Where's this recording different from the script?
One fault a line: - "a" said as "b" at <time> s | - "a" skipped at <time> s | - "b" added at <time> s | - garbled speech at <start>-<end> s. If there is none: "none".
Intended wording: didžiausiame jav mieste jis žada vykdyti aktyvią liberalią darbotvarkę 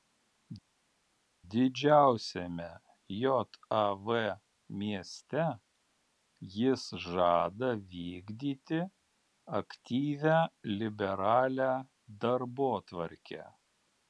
none